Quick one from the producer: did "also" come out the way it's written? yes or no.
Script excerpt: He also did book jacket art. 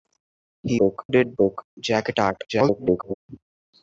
no